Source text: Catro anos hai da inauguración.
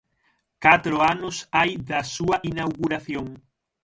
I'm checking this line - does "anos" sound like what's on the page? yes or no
yes